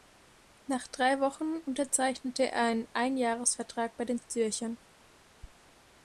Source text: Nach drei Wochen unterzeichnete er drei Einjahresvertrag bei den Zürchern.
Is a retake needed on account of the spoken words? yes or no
yes